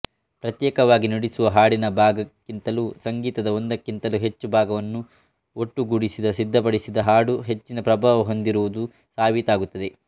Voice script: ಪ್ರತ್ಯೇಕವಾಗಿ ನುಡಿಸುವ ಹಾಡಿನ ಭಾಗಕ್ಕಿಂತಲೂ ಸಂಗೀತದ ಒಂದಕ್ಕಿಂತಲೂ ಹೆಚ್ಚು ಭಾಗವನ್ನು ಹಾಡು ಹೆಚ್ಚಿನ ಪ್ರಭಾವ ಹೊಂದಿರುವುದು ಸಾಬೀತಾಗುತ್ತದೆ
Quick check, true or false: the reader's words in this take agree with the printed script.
false